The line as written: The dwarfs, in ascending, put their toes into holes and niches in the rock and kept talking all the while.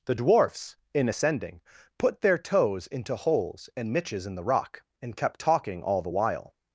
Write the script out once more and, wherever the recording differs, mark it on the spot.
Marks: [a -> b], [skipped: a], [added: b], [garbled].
The dwarfs, in ascending, put their toes into holes and niches in the rock and kept talking all the while.